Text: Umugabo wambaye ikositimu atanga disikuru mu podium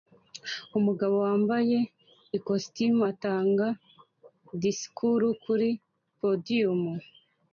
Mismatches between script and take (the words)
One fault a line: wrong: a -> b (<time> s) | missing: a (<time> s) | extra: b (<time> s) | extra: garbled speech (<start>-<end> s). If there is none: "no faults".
wrong: mu -> kuri (5.4 s)